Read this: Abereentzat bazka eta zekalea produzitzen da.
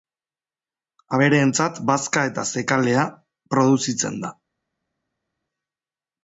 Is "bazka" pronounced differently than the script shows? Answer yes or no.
no